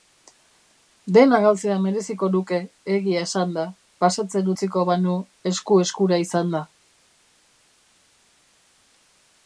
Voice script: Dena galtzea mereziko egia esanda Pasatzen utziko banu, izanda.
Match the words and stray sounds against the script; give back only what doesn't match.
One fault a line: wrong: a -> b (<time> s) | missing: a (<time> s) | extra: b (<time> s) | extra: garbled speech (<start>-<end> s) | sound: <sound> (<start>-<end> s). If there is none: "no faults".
extra: nuke (2.4 s)
extra: esku eskura (5.5 s)